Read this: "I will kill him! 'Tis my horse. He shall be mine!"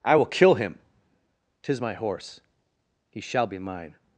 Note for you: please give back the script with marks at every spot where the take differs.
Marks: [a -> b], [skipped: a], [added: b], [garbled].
"I will kill him! 'Tis my horse. He shall be mine!"